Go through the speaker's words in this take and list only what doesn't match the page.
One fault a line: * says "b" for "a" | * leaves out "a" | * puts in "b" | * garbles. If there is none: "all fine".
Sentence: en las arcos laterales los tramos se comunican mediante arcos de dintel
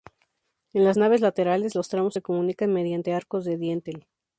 * says "naves" for "arcos"